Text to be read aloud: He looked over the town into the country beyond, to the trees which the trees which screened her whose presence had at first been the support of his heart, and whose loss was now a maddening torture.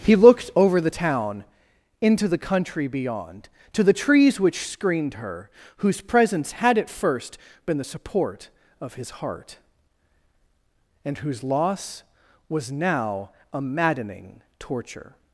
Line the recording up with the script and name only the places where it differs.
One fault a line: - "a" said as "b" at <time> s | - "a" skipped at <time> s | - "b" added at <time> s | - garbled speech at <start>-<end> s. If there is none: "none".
- "the trees which" skipped at 4.7 s